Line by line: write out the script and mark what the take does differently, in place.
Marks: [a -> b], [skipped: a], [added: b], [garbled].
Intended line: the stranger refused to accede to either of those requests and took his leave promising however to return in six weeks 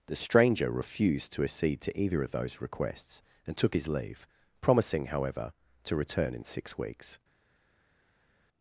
the stranger refused to accede to either of those requests and took his leave promising however to return in six weeks